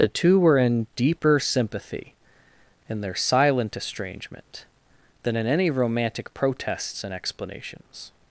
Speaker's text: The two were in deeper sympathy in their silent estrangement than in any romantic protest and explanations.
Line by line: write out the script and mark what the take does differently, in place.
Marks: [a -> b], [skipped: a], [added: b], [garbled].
The two were in deeper sympathy in their silent estrangement than in any romantic [protest -> protests] and explanations.